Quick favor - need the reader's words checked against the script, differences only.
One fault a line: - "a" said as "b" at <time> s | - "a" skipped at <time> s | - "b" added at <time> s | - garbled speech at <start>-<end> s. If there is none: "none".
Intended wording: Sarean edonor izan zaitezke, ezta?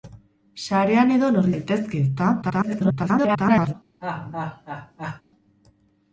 - "izan" skipped at 1.5 s
- garbled speech at 2.4-3.7 s